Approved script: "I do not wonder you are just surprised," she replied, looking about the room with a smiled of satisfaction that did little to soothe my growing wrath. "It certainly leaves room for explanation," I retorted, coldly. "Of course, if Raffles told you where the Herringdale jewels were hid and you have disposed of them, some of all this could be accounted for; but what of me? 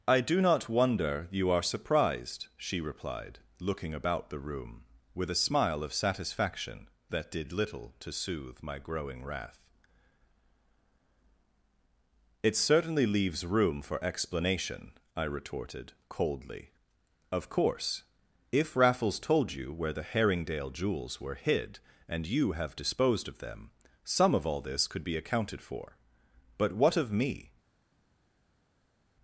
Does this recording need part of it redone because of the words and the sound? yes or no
yes